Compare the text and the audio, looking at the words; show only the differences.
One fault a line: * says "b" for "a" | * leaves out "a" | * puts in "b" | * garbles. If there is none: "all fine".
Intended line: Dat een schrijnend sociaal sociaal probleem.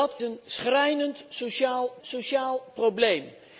all fine